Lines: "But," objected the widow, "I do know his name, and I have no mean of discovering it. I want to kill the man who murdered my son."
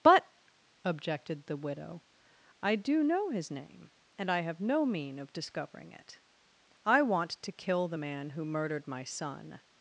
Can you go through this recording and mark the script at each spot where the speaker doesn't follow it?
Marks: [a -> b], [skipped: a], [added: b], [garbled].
"But," objected the widow, "I do know his name, and I have no mean of discovering it. I want to kill the man who murdered my son."